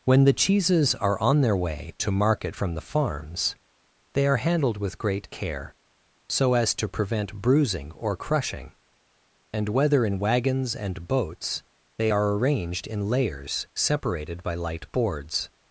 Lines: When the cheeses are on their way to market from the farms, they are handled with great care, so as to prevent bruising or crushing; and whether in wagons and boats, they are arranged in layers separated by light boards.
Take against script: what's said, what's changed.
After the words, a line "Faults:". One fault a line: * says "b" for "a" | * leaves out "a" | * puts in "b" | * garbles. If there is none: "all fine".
When the cheeses are on their way to market from the farms, they are handled with great care, so as to prevent bruising or crushing; and whether in wagons and boats, they are arranged in layers separated by light boards.
Faults:
all fine